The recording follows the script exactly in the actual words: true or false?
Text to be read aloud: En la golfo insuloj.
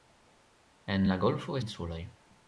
true